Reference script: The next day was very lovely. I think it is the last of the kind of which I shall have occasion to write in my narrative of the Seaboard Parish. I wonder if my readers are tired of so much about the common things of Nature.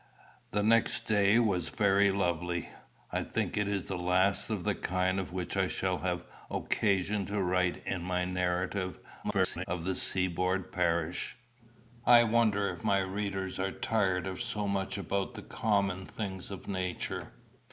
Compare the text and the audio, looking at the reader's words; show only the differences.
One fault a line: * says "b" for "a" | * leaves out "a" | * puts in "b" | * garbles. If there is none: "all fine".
* garbles